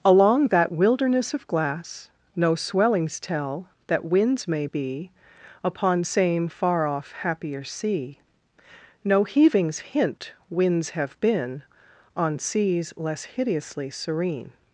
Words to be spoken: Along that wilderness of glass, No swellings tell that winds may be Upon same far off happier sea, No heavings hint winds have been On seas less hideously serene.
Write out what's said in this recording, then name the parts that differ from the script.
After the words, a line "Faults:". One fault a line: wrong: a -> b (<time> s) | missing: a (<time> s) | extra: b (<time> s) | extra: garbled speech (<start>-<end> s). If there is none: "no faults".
Along that wilderness of glass, No swellings tell that winds may be Upon same far off happier sea, No heavings hint winds have been On seas less hideously serene.
Faults:
no faults